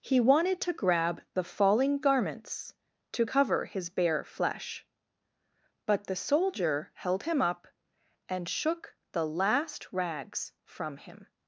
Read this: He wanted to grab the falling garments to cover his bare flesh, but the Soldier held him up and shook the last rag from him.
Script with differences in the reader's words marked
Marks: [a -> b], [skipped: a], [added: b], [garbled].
He wanted to grab the falling garments to cover his bare flesh, but the Soldier held him up and shook the last [rag -> rags] from him.